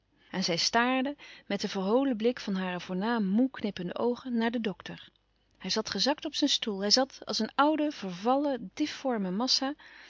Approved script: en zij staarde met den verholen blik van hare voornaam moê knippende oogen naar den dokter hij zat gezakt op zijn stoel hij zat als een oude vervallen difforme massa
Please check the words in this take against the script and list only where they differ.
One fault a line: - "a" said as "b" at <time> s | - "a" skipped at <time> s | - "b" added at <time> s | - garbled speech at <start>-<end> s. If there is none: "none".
none